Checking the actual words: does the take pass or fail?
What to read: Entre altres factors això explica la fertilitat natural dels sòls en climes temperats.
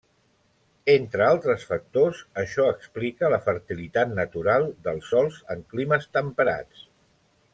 pass